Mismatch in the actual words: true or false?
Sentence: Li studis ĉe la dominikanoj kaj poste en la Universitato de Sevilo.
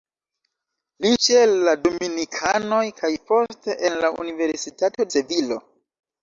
true